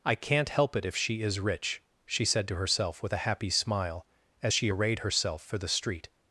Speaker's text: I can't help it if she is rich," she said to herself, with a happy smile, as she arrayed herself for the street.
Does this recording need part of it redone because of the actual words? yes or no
no